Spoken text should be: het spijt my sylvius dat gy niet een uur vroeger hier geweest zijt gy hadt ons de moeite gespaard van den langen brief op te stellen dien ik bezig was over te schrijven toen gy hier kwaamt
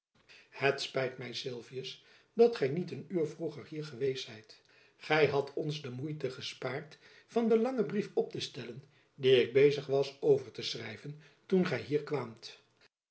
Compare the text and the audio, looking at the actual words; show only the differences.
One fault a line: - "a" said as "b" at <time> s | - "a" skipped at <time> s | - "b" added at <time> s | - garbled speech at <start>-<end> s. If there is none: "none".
none